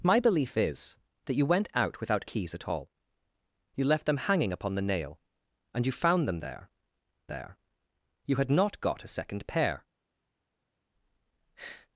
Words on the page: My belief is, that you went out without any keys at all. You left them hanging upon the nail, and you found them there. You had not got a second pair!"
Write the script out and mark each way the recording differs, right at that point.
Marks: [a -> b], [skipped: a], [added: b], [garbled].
My belief is, that you went out without [skipped: any] keys at all. You left them hanging upon the nail, and you found them there. [added: there] You had not got a second pair!"